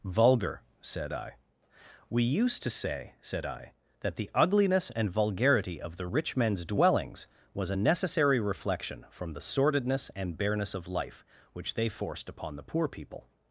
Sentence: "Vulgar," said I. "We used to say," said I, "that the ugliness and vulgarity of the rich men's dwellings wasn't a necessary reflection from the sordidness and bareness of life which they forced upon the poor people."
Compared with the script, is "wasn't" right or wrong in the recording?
wrong